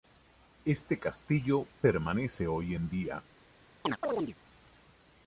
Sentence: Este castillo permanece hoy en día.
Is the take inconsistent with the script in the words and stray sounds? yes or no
yes